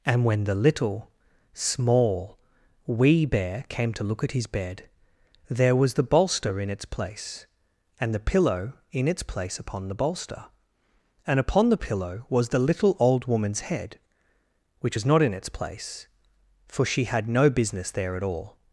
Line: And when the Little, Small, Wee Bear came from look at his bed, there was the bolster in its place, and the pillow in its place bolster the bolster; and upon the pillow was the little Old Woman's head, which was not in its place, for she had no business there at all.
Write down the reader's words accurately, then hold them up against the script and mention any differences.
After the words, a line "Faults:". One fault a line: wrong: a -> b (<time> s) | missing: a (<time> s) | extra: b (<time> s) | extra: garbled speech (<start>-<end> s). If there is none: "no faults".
And when the Little, Small, Wee Bear came to look at his bed, there was the bolster in its place, and the pillow in its place upon the bolster; and upon the pillow was the little Old Woman's head, which was not in its place, for she had no business there at all.
Faults:
wrong: from -> to (3.9 s)
wrong: bolster -> upon (9.6 s)